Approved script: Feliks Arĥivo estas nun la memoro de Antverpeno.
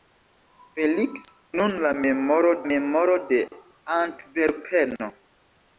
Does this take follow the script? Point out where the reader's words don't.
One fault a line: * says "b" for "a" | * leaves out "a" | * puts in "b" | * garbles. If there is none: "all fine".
* leaves out "Arĥivo estas"
* puts in "memoro"